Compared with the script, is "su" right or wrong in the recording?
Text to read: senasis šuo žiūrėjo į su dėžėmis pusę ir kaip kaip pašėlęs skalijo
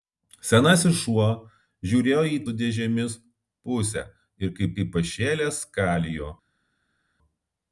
right